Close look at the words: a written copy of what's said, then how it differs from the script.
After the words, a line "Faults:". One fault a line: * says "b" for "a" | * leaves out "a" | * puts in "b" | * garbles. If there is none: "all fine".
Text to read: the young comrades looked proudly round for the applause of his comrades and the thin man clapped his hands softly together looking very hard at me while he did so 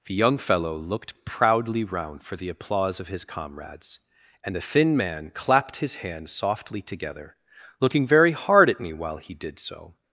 the young fellow looked proudly round for the applause of his comrades and the thin man clapped his hands softly together looking very hard at me while he did so
Faults:
* says "fellow" for "comrades"